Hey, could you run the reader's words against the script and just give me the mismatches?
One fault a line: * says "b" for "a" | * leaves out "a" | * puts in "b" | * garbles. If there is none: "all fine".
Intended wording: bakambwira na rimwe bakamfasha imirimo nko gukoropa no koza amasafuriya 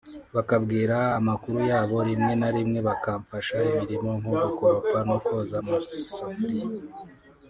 * puts in "amakuru yabo rimwe"